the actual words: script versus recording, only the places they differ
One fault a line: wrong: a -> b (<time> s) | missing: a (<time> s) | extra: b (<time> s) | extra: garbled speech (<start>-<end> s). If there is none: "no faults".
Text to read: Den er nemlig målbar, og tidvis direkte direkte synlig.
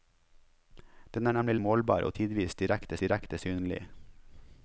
no faults